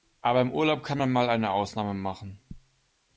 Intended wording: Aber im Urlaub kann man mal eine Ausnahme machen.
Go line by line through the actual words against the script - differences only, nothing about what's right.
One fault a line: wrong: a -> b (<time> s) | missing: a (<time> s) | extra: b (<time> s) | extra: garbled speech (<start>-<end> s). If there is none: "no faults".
no faults